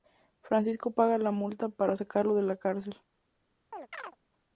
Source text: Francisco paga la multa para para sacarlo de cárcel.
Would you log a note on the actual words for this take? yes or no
yes